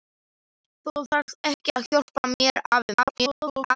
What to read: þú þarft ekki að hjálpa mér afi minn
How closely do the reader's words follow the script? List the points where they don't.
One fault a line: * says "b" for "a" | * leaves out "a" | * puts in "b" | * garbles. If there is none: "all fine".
* garbles